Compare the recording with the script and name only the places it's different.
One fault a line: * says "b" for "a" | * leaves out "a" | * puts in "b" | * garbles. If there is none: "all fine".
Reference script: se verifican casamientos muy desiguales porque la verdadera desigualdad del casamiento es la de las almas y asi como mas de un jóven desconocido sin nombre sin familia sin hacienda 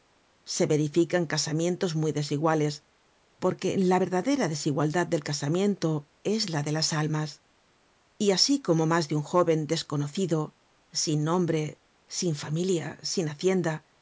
all fine